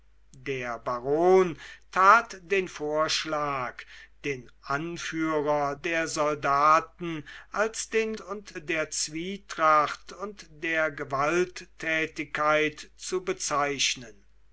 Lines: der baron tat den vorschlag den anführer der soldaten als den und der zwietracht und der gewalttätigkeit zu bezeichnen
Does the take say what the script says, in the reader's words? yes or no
yes